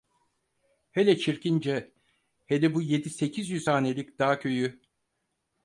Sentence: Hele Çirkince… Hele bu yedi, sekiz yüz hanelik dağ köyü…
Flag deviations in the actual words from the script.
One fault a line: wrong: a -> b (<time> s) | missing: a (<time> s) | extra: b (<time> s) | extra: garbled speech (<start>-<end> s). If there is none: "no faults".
no faults